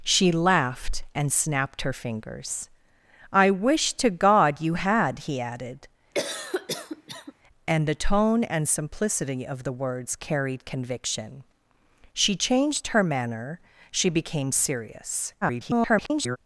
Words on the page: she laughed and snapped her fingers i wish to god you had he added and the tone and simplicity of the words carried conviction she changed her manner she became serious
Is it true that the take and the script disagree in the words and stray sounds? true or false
true